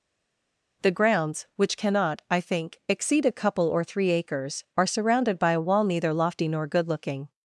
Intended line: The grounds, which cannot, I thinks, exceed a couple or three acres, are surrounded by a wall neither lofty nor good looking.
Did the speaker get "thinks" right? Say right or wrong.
wrong